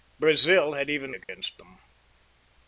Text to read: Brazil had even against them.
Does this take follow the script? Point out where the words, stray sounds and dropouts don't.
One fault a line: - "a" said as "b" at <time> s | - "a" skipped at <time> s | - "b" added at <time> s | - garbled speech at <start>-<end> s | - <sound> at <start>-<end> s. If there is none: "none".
- dropout at 1.2-1.3 s